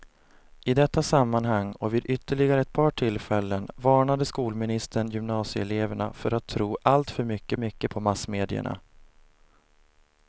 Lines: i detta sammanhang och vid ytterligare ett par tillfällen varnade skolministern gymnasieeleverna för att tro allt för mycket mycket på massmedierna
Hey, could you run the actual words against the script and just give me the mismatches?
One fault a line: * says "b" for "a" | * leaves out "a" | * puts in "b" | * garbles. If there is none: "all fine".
all fine